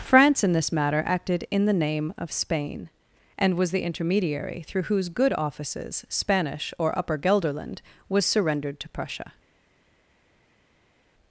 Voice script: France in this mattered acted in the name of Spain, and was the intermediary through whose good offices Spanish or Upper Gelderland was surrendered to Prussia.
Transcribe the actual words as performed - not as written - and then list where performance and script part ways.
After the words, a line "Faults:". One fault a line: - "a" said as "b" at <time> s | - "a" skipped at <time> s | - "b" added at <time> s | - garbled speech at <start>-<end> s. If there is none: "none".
France in this matter acted in the name of Spain, and was the intermediary through whose good offices Spanish or Upper Gelderland was surrendered to Prussia.
Faults:
- "mattered" said as "matter" at 0.7 s